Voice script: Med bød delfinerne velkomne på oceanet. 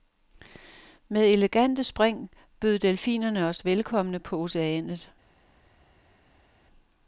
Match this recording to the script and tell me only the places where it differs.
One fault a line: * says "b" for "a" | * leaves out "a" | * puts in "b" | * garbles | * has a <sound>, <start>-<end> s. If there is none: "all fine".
* puts in "elegante spring"
* puts in "os"